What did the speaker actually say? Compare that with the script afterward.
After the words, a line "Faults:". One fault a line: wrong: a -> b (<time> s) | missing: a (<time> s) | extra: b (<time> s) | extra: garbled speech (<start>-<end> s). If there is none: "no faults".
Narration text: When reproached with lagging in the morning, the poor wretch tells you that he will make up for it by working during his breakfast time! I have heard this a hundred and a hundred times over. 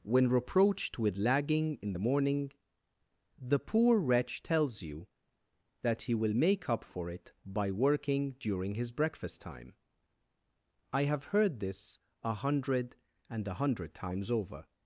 When reproached with lagging in the morning, the poor wretch tells you that he will make up for it by working during his breakfast time! I have heard this a hundred and a hundred times over.
Faults:
no faults